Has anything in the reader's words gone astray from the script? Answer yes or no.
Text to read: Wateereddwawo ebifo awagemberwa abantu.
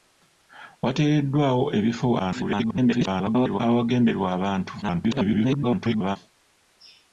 yes